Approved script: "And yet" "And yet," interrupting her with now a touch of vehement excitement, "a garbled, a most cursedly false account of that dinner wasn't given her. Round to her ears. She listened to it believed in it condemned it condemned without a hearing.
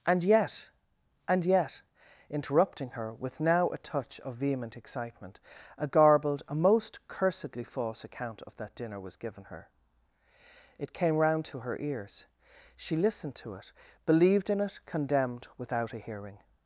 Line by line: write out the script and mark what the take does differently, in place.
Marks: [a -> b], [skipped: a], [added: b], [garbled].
"And yet" "And yet," interrupting her with now a touch of vehement excitement, "a garbled, a most cursedly false account of that dinner [wasn't -> was] given her. [added: It came] Round to her ears. She listened to it believed in it condemned [skipped: it condemned] without a hearing.